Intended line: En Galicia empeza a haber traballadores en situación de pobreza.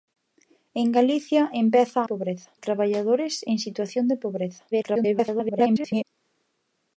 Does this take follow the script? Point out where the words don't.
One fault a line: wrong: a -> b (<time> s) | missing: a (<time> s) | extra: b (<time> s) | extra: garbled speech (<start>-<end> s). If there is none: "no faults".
wrong: haber -> pobreza (2.0 s)
extra: garbled speech (4.7-6.0 s)